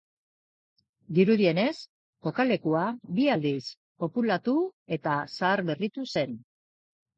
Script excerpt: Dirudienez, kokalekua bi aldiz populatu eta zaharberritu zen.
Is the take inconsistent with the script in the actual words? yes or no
no